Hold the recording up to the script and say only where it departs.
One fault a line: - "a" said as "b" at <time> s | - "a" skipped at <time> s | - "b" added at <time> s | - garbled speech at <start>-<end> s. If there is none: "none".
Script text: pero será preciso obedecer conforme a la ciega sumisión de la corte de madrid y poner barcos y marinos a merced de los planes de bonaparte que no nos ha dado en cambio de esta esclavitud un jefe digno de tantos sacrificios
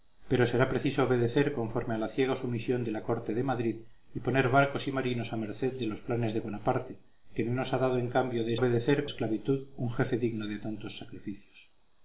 - "esta" said as "obedecer" at 8.6 s